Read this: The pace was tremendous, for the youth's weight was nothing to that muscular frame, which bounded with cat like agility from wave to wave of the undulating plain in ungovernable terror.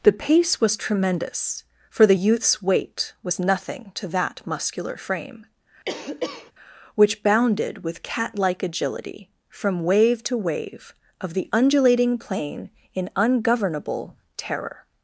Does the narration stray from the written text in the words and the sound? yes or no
yes